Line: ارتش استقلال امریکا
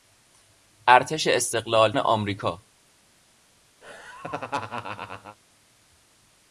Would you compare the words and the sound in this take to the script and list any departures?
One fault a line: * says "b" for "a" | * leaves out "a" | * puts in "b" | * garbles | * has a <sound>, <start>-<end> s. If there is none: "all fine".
* has a laugh, 3.8-5.4 s